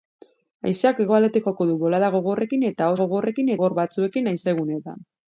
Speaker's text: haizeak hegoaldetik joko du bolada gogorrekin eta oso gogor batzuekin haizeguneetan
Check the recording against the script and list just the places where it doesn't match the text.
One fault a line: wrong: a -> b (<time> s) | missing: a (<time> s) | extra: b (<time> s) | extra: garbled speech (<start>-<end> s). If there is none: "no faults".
wrong: oso -> gogorrekin (3.0 s)